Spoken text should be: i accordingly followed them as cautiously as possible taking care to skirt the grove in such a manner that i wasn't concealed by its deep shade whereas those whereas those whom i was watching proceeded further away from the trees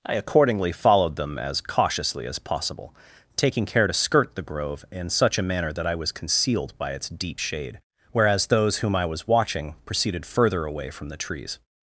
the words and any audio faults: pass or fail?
fail